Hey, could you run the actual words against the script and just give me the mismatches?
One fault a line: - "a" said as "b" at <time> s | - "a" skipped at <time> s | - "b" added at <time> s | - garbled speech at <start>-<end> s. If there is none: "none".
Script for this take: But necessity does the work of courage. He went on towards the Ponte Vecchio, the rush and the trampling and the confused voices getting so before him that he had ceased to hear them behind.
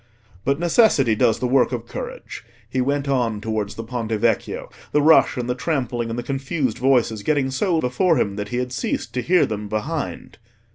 none